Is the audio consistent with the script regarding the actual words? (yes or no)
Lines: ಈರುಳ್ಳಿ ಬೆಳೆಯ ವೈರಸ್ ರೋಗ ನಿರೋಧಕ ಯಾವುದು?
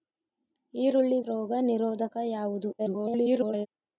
no